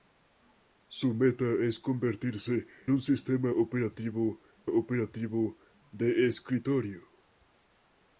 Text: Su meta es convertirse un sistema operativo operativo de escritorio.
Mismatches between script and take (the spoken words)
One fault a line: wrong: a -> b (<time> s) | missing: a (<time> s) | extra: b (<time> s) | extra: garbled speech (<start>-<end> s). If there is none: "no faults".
no faults